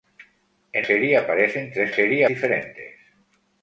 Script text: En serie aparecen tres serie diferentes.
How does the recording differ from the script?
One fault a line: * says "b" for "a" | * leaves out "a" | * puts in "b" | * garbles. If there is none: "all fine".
all fine